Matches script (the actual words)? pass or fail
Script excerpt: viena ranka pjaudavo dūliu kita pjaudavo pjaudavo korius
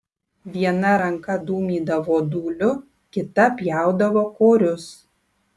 fail